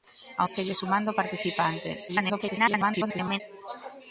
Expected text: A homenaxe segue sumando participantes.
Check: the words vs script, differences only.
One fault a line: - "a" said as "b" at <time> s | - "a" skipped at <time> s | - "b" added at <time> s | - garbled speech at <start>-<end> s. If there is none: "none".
- "homenaxe" skipped at 0.4 s
- garbled speech at 2.1-3.4 s